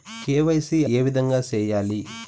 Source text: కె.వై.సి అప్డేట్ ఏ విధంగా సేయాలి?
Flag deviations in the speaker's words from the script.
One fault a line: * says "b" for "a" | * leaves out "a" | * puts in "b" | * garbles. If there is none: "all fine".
* leaves out "అప్డేట్"